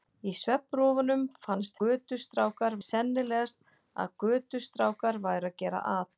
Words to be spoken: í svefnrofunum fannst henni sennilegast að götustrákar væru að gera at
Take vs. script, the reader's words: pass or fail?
fail